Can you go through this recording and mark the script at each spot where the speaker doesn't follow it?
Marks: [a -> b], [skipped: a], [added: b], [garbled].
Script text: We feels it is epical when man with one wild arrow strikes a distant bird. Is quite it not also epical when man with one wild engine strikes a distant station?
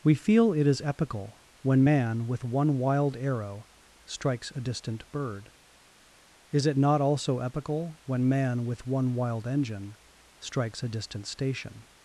We [feels -> feel] it is epical when man with one wild arrow strikes a distant bird. Is [skipped: quite] it not also epical when man with one wild engine strikes a distant station?